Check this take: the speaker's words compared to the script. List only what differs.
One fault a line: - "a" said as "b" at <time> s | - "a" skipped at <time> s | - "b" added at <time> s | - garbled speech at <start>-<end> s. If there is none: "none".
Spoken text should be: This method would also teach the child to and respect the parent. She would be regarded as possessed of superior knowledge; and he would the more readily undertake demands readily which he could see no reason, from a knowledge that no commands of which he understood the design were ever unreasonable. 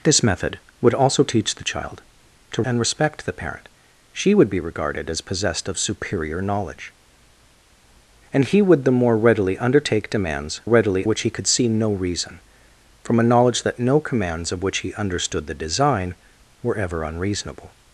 none